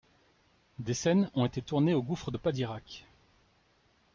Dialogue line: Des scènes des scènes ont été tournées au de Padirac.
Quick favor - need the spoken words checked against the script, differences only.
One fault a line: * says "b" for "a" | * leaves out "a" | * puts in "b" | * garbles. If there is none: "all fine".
* leaves out "des scènes"
* puts in "gouffre"